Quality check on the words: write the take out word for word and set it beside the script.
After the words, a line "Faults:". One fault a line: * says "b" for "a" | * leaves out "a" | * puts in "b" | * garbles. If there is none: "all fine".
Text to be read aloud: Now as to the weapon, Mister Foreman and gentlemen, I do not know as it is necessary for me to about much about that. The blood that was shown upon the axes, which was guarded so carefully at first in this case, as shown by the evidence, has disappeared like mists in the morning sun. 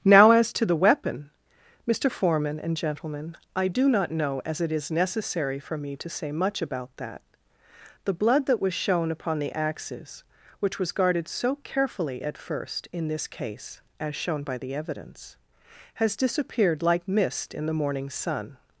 Now as to the weapon, Mister Foreman and gentlemen, I do not know as it is necessary for me to say much about that. The blood that was shown upon the axes, which was guarded so carefully at first in this case, as shown by the evidence, has disappeared like mist in the morning sun.
Faults:
* says "say" for "about"
* says "mist" for "mists"